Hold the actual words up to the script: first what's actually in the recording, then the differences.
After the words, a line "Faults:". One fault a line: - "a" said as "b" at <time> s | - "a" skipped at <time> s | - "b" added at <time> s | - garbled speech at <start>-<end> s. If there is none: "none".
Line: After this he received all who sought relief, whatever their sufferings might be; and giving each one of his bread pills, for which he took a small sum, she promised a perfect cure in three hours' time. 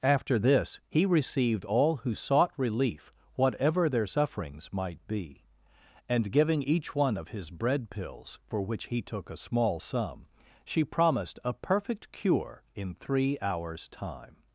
After this he received all who sought relief, whatever their sufferings might be; and giving each one of his bread pills, for which he took a small sum, she promised a perfect cure in three hours' time.
Faults:
none